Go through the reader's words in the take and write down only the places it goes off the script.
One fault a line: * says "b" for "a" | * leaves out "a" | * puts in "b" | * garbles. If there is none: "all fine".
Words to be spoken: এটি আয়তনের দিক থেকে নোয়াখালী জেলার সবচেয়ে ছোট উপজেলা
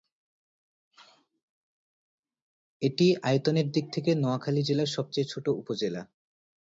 all fine